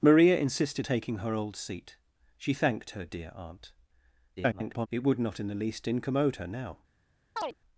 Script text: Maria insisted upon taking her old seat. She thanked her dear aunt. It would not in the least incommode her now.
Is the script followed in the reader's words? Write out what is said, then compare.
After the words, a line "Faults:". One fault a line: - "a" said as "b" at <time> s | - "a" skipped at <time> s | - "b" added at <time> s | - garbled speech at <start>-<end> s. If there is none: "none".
Maria insisted taking her old seat. She thanked her dear aunt. [garbled] It would not in the least incommode her now.
Faults:
- "upon" skipped at 0.9 s
- garbled speech at 4.4-4.9 s